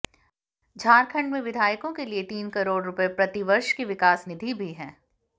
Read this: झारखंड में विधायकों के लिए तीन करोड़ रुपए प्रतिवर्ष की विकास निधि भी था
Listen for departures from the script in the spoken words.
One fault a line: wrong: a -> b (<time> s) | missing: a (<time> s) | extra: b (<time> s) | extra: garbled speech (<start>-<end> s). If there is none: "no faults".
wrong: था -> है (4.7 s)